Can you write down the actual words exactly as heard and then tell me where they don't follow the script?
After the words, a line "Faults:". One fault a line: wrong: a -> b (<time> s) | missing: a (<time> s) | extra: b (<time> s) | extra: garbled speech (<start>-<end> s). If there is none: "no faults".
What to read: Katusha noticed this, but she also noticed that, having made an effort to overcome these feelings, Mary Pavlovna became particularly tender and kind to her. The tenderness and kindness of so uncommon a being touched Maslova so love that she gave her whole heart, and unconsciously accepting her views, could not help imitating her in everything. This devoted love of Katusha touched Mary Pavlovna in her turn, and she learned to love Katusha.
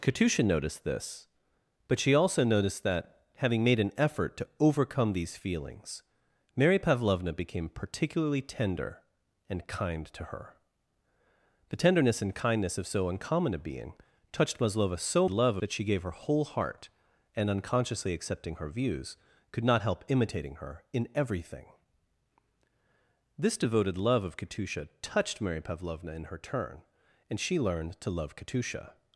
Katusha noticed this, but she also noticed that, having made an effort to overcome these feelings, Mary Pavlovna became particularly tender and kind to her. The tenderness and kindness of so uncommon a being touched Maslova so love that she gave her whole heart, and unconsciously accepting her views, could not help imitating her in everything. This devoted love of Katusha touched Mary Pavlovna in her turn, and she learned to love Katusha.
Faults:
no faults